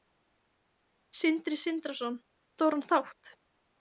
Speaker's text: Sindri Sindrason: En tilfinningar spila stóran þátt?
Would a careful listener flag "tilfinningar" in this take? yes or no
yes